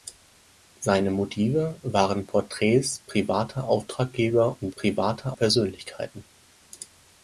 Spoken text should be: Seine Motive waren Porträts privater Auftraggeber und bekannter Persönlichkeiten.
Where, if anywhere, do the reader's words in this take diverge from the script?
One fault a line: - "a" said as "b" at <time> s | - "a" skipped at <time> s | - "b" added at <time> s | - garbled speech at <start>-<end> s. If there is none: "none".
- "bekannter" said as "privater" at 4.7 s